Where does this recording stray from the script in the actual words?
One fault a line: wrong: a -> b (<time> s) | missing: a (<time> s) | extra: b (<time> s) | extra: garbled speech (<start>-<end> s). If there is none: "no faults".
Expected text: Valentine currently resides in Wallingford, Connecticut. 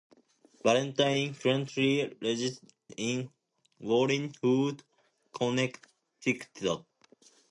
missing: resides (2.2 s)